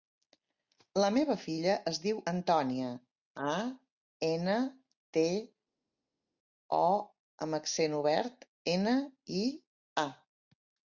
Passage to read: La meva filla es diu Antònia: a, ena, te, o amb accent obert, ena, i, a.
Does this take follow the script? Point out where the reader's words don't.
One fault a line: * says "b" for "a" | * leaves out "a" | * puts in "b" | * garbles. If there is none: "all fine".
all fine